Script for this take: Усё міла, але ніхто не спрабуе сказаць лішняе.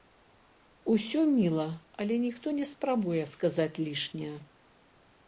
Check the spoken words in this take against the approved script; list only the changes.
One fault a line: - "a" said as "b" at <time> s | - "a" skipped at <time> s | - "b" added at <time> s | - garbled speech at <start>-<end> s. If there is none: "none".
none